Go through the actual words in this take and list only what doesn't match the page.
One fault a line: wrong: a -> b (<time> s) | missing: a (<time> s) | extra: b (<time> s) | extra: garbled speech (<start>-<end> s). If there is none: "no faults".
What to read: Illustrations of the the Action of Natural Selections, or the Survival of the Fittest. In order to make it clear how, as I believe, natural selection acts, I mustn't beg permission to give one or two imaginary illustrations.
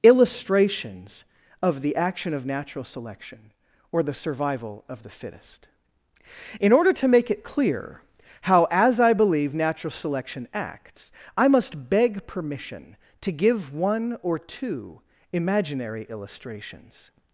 missing: the (1.9 s)
wrong: Selections -> Selection (2.8 s)
wrong: mustn't -> must (11.5 s)